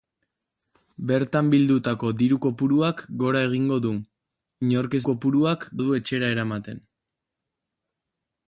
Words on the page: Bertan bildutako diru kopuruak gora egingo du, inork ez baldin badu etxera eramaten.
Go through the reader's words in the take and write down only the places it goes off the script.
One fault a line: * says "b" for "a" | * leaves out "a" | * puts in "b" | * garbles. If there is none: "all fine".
* says "kopuruak" for "baldin"